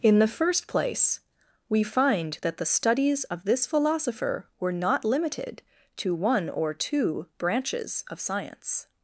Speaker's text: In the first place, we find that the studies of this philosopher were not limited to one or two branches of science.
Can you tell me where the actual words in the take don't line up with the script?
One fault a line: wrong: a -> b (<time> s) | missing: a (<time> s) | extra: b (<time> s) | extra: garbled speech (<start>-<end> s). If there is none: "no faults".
no faults